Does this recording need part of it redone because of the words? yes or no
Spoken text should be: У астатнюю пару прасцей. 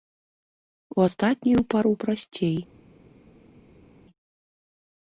no